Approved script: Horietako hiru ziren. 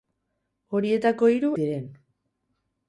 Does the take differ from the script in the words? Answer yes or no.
no